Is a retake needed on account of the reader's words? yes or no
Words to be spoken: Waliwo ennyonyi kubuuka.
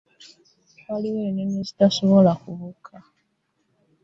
yes